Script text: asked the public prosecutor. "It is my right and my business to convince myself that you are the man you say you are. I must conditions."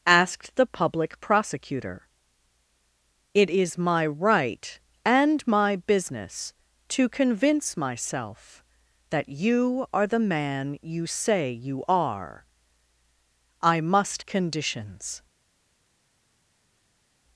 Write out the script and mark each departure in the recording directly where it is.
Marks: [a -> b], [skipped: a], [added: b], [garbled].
asked the public prosecutor. "It is my right and my business to convince myself that you are the man you say you are. I must conditions."